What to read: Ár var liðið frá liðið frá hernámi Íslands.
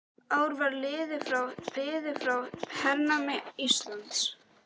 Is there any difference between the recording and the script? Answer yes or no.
no